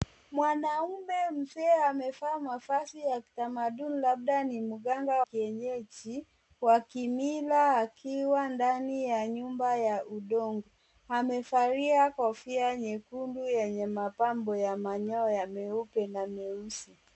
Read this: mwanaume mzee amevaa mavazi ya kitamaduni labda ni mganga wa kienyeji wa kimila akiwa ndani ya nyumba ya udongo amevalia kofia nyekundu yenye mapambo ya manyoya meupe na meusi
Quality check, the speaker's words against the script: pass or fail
fail